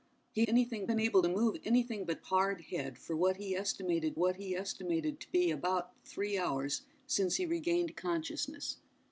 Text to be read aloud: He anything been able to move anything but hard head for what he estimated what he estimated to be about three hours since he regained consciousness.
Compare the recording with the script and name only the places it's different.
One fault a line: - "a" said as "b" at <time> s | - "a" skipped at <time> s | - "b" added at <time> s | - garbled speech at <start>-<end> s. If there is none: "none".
none